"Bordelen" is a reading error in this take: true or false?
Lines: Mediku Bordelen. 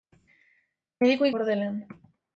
false